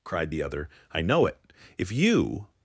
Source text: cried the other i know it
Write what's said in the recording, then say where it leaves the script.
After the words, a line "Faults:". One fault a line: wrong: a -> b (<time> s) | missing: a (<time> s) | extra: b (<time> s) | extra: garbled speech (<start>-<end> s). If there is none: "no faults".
cried the other i know it if you
Faults:
extra: if you (1.8 s)